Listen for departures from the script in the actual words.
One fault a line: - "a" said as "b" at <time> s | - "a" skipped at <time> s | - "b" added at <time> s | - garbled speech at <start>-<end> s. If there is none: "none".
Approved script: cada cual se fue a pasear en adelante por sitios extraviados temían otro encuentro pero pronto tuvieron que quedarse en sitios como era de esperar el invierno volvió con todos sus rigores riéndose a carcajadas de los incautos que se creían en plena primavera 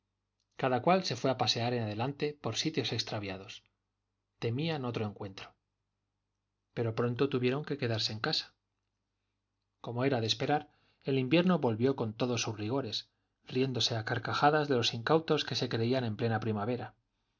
- "sitios" said as "casa" at 8.2 s